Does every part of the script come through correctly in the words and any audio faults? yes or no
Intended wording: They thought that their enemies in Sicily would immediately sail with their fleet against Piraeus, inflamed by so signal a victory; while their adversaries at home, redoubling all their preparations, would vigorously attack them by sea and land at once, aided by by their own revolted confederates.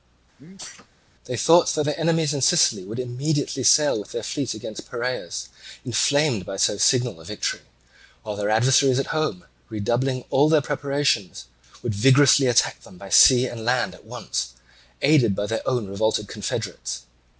no